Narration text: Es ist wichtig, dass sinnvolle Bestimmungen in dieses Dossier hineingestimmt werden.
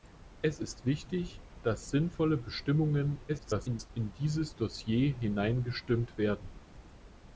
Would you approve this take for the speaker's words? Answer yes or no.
no